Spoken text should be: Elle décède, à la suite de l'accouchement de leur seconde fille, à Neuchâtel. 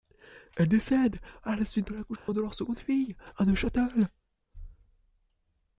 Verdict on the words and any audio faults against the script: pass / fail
fail